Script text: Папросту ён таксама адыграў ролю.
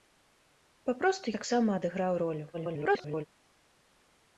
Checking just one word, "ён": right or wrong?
wrong